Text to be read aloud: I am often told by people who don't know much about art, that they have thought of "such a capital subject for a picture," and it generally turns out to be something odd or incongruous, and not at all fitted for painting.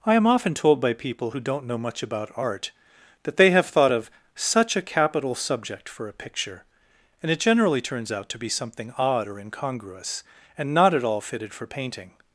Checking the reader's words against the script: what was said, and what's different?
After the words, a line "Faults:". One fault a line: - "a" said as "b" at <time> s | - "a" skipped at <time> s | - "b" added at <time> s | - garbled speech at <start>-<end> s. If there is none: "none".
I am often told by people who don't know much about art, that they have thought of "such a capital subject for a picture," and it generally turns out to be something odd or incongruous, and not at all fitted for painting.
Faults:
none